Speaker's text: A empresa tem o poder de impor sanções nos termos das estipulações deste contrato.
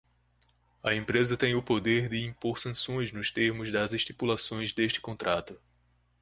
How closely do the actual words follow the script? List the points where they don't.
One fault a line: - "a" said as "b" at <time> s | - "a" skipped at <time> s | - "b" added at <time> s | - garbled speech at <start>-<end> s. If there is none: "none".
none